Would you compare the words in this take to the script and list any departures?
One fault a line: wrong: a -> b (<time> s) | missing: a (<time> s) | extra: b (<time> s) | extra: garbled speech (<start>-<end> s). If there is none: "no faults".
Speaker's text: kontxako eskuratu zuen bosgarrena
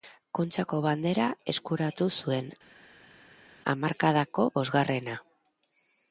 extra: bandera (0.8 s)
extra: hamarkadako (3.7 s)